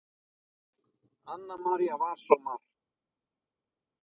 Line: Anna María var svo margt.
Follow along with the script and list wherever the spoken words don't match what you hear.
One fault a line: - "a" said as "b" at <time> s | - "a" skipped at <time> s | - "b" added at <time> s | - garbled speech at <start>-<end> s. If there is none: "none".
none